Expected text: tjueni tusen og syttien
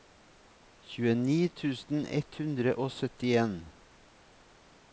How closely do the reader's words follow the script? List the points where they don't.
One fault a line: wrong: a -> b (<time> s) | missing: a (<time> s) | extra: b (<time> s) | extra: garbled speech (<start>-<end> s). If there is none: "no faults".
extra: ett hundre (2.2 s)